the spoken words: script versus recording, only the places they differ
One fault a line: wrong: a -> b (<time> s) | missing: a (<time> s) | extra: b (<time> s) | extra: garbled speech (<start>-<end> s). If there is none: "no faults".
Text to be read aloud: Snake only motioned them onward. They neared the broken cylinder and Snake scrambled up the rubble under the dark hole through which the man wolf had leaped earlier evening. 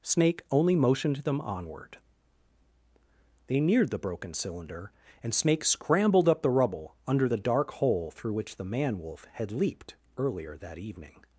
extra: that (10.6 s)